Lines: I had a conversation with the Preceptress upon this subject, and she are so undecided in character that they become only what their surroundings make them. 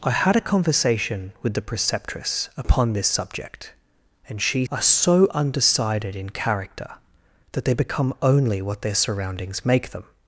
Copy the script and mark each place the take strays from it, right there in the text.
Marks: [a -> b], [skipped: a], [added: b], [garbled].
I had a conversation with the Preceptress upon this subject, and she are so undecided in character that they become only what their surroundings make them.